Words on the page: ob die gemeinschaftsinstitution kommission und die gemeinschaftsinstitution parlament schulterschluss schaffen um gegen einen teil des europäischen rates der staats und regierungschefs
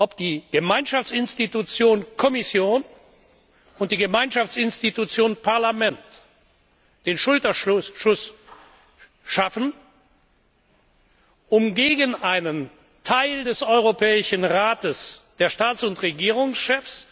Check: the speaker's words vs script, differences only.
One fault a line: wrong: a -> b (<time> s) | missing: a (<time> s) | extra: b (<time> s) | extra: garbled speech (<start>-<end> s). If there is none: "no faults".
extra: den (7.0 s)